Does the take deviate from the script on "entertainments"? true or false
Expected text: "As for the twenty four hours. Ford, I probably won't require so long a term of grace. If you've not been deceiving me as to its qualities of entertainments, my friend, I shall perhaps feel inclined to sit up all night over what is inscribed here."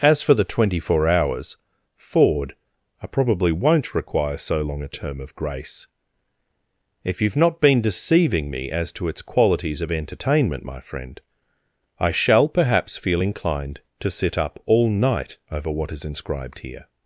true